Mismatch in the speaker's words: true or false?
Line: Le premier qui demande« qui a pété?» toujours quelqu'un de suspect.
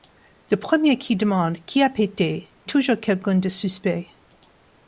false